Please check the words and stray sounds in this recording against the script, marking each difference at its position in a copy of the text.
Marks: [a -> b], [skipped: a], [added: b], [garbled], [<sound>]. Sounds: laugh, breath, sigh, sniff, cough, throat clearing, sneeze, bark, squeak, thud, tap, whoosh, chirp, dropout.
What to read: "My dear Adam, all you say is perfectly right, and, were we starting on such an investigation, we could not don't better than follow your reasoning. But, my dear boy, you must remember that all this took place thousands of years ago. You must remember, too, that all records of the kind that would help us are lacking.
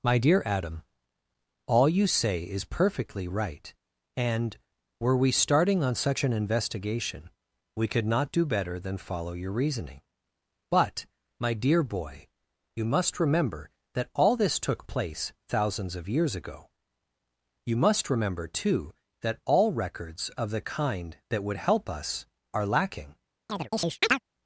"My dear Adam, all you say is perfectly right, and, were we starting on such an investigation, we could not [don't -> do] better than follow your reasoning. But, my dear boy, you must remember that all this took place thousands of years ago. You must remember, too, that all records of the kind that would help us are lacking. [chirp]